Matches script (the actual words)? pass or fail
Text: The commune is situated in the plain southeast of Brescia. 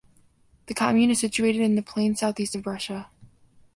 pass